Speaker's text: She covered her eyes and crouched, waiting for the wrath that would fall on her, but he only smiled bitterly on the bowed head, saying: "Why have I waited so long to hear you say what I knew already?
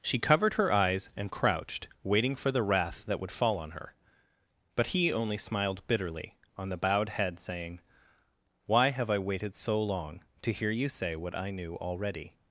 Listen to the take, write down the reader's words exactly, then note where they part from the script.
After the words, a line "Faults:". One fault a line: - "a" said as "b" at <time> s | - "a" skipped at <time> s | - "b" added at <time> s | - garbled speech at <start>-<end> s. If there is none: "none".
She covered her eyes and crouched, waiting for the wrath that would fall on her, but he only smiled bitterly on the bowed head, saying: "Why have I waited so long to hear you say what I knew already?
Faults:
none